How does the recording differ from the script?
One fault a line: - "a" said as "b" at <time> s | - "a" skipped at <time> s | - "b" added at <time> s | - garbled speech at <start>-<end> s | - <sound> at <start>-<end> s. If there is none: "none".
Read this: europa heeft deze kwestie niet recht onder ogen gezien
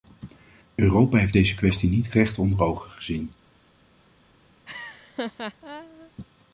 - laugh at 4.7-6.1 s